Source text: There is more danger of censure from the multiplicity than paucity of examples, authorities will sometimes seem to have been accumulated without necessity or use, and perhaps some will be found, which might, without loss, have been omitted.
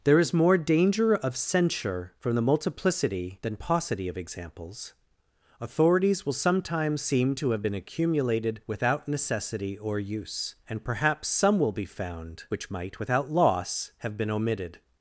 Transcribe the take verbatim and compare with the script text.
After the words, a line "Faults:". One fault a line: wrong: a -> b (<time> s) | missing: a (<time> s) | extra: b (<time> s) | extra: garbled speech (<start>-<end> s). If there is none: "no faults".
There is more danger of censure from the multiplicity than paucity of examples, authorities will sometimes seem to have been accumulated without necessity or use, and perhaps some will be found, which might, without loss, have been omitted.
Faults:
no faults